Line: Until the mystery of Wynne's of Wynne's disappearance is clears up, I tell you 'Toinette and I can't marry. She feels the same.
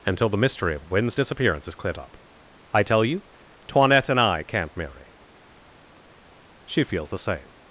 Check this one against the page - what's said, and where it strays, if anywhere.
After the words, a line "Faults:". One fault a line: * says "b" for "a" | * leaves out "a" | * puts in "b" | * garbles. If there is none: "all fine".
Until the mystery of Wynne's disappearance is cleared up, I tell you 'Toinette and I can't marry. She feels the same.
Faults:
* leaves out "of Wynne's"
* says "cleared" for "clears"